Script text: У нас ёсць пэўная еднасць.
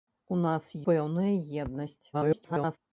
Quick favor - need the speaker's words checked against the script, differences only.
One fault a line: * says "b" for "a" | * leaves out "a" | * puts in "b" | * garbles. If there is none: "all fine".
* leaves out "ёсць"
* garbles